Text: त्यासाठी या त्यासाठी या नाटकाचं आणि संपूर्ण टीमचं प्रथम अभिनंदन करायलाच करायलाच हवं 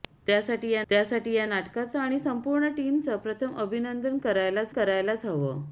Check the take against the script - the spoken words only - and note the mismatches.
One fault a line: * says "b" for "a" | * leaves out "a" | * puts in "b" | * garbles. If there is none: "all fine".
all fine